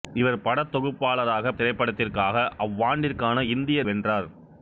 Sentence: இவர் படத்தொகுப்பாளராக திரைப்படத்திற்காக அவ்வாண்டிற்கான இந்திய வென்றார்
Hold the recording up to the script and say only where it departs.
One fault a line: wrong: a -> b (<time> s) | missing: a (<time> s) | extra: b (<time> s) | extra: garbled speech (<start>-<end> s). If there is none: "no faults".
no faults